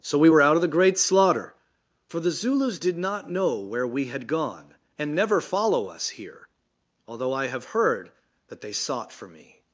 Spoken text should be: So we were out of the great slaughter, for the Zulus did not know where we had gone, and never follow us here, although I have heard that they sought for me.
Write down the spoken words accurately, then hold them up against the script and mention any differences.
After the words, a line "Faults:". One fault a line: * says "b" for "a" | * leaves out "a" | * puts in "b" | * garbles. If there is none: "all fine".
So we were out of the great slaughter, for the Zulus did not know where we had gone, and never follow us here, although I have heard that they sought for me.
Faults:
all fine